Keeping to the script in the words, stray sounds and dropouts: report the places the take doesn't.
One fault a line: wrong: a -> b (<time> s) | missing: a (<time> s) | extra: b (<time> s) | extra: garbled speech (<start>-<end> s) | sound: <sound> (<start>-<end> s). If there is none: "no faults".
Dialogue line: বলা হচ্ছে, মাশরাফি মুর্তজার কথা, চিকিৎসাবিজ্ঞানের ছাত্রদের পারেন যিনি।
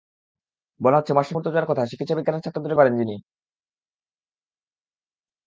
no faults